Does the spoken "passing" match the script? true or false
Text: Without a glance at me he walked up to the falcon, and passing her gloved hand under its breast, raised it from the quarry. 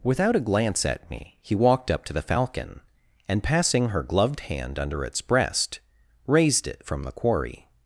true